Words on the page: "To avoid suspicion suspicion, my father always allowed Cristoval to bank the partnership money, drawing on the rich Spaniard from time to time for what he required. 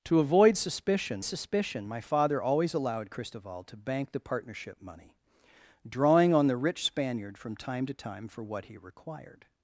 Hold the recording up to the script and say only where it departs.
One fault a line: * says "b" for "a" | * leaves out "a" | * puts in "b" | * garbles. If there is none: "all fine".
all fine